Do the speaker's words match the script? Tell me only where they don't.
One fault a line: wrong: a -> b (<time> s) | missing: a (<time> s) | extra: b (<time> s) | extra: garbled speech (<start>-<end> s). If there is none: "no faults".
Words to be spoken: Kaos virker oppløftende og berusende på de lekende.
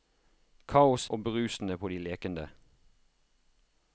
missing: virker oppløftende (1.1 s)